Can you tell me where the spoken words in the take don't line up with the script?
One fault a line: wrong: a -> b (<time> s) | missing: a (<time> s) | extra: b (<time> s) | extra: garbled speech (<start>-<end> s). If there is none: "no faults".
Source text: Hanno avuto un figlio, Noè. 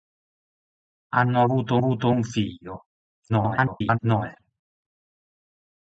extra: avuto (1.8 s)
extra: garbled speech (3.3-4.0 s)